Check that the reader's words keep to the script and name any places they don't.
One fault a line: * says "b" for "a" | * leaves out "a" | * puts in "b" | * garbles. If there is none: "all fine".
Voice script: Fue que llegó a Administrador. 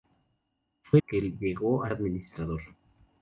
all fine